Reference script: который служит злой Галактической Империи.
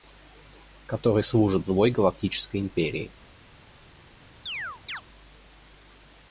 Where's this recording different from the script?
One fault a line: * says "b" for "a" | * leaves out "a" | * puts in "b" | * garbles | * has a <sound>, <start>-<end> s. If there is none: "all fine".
* has a chirp, 4.5-5.0 s